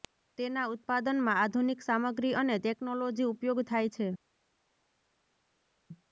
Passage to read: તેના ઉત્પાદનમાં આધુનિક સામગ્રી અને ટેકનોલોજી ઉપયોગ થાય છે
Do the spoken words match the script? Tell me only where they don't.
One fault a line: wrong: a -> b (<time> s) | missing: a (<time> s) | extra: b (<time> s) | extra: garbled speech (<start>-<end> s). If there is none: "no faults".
no faults